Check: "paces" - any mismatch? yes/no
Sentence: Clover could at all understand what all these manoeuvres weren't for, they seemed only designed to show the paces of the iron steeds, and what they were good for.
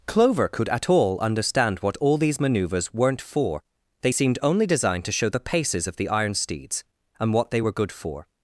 no